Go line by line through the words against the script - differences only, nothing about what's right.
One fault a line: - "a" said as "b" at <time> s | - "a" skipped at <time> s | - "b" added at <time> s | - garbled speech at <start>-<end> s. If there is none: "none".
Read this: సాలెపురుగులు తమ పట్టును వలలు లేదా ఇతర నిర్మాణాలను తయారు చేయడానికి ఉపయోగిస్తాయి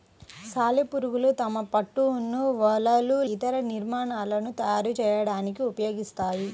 - "లేదా" skipped at 3.2 s